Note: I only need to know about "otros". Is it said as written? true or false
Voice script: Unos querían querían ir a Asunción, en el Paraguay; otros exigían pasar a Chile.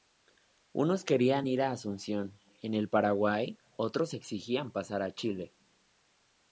true